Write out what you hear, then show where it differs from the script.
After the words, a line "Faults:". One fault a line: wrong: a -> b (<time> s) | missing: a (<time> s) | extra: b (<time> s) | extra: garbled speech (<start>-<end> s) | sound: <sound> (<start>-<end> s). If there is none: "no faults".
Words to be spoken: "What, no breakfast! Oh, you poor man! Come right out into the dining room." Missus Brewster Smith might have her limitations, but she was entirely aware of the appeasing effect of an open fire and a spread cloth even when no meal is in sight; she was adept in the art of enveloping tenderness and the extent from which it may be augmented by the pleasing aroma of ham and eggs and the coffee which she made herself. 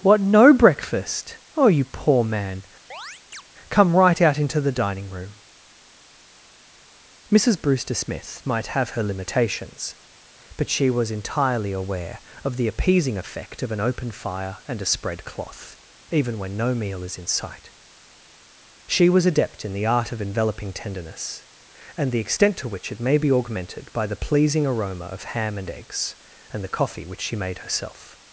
"What, no breakfast! Oh, you poor man! Come right out into the dining room." Missus Brewster Smith might have her limitations, but she was entirely aware of the appeasing effect of an open fire and a spread cloth even when no meal is in sight; she was adept in the art of enveloping tenderness and the extent to which it may be augmented by the pleasing aroma of ham and eggs and the coffee which she made herself.
Faults:
sound: chirp (2.9-3.4 s)
wrong: from -> to (22.6 s)